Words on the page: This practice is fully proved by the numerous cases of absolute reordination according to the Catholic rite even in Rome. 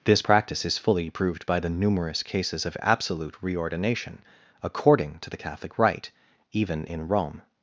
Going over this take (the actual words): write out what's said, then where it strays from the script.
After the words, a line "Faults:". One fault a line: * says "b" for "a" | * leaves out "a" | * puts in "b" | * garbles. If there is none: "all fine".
This practice is fully proved by the numerous cases of absolute reordination according to the Catholic rite even in Rome.
Faults:
all fine